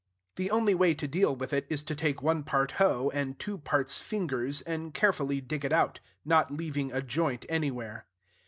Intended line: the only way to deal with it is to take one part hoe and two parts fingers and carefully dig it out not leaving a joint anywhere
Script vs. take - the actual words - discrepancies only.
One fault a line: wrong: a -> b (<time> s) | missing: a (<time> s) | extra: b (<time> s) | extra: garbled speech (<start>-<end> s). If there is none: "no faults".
no faults